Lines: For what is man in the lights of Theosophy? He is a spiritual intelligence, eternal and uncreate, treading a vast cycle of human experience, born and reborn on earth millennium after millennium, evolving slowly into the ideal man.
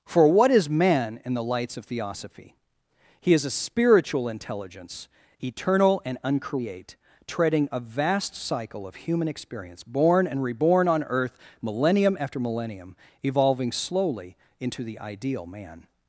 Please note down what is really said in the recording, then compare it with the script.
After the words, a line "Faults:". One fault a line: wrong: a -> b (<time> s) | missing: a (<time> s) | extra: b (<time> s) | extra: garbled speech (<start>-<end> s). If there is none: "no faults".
For what is man in the lights of Theosophy? He is a spiritual intelligence, eternal and uncreate, treading a vast cycle of human experience, born and reborn on earth millennium after millennium, evolving slowly into the ideal man.
Faults:
no faults